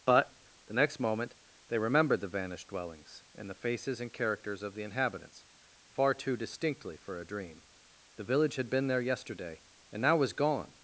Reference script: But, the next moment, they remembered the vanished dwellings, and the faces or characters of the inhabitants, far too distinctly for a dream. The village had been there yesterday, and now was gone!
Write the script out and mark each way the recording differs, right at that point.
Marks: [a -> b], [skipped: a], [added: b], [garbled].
But, the next moment, they remembered the vanished dwellings, and the faces [or -> and] characters of the inhabitants, far too distinctly for a dream. The village had been there yesterday, and now was gone!